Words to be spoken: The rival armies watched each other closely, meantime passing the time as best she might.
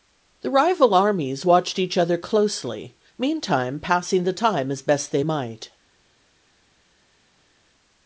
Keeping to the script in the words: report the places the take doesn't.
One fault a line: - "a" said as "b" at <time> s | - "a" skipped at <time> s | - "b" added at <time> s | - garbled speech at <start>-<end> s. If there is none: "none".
- "she" said as "they" at 5.1 s